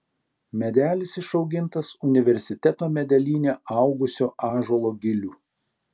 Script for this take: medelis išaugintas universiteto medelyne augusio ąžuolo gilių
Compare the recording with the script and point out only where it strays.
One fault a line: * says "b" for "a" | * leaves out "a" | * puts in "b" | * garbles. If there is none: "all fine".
all fine